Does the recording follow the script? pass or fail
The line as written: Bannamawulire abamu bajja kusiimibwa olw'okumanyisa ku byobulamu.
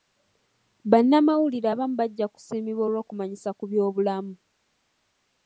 pass